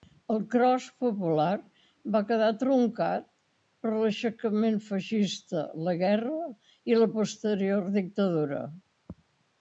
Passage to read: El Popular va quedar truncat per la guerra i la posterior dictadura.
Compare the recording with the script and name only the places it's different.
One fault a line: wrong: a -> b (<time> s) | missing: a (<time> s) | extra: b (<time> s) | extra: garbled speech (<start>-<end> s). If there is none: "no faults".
extra: Cros (0.5 s)
extra: l'aixecament feixista (4.0 s)